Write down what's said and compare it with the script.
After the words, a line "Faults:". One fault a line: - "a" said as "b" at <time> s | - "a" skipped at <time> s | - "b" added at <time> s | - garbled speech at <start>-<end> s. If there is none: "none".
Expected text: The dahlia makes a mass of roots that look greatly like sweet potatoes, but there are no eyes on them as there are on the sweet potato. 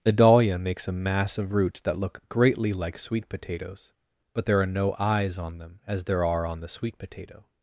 The dahlia makes a mass of roots that look greatly like sweet potatoes, but there are no eyes on them as there are on the sweet potato.
Faults:
none